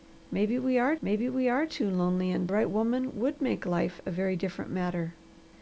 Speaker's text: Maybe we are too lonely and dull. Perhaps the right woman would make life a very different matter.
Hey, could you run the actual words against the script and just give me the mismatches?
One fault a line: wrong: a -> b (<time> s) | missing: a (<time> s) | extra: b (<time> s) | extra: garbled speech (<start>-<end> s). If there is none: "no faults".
extra: maybe we are (1.0 s)
missing: dull Perhaps the (2.5 s)